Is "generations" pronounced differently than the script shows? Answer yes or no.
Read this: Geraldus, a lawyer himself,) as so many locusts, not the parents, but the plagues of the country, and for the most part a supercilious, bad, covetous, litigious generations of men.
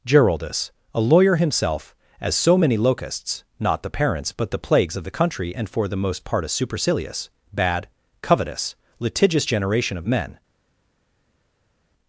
yes